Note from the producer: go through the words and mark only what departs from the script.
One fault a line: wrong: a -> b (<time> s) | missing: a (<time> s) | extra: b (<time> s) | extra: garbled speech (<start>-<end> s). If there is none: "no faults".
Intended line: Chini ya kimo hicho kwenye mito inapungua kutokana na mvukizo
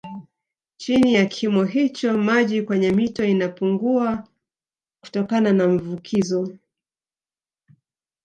extra: maji (2.2 s)